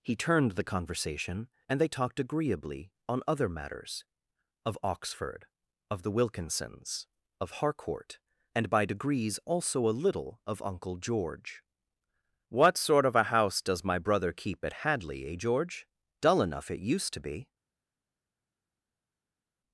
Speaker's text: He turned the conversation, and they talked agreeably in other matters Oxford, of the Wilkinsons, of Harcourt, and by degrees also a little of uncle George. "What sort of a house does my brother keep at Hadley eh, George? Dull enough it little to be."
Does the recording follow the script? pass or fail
fail